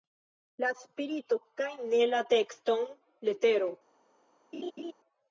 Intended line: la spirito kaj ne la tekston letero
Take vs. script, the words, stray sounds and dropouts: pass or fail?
fail